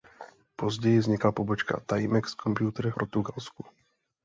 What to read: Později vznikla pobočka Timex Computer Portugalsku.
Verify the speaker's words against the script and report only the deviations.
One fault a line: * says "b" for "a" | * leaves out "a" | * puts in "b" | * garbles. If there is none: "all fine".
all fine